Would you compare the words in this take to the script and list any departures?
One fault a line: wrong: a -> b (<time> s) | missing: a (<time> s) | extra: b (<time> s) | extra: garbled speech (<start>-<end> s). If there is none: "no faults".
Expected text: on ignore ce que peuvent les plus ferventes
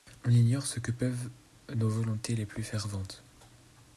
extra: nos volontés (1.8 s)